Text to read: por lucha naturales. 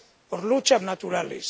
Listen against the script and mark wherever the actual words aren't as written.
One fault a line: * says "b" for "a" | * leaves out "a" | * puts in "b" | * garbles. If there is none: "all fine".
all fine